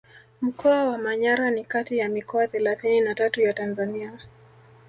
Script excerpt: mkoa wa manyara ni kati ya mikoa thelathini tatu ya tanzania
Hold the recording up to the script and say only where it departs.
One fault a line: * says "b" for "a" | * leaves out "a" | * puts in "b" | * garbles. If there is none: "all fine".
* puts in "na"